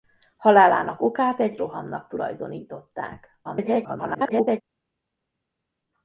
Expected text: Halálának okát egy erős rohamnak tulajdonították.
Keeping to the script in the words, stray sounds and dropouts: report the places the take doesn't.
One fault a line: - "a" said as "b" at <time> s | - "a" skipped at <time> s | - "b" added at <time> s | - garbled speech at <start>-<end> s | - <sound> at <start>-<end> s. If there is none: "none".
- "erős" skipped at 1.6 s
- garbled speech at 3.4-4.6 s